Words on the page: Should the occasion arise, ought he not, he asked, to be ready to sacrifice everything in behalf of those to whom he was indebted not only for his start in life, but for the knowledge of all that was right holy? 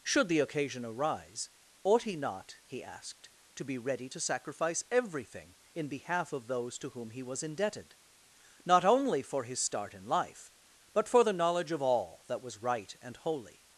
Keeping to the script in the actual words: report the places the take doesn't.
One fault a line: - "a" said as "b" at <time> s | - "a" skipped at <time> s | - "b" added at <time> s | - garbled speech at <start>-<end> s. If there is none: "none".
- "and" added at 13.0 s